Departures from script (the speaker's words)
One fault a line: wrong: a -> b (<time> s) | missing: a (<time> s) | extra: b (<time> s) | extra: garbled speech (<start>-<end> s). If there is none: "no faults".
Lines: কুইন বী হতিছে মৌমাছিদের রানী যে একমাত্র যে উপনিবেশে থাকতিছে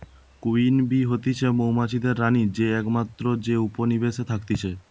no faults